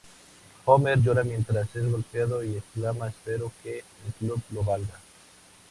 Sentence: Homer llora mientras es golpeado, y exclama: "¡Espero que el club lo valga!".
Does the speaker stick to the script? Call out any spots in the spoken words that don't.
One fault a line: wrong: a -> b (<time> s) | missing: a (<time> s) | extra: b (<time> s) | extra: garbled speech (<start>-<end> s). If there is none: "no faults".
no faults